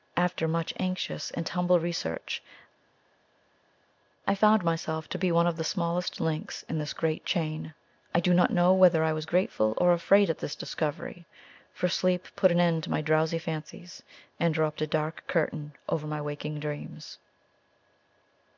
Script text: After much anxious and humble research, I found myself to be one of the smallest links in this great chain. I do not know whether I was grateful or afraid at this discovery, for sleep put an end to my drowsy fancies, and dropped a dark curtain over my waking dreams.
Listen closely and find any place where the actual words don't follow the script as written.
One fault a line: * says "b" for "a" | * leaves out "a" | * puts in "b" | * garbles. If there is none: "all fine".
all fine